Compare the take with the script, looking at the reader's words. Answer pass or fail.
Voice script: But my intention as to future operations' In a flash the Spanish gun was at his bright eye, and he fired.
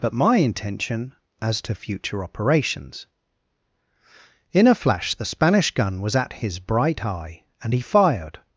pass